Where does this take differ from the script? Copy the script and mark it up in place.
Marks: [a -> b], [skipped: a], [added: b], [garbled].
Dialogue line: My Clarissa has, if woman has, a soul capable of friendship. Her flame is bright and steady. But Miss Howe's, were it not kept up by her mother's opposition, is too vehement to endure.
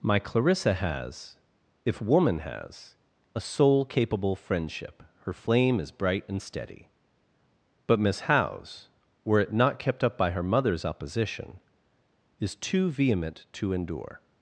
My Clarissa has, if woman has, a soul capable [skipped: of] friendship. Her flame is bright and steady. But Miss Howe's, were it not kept up by her mother's opposition, is too vehement to endure.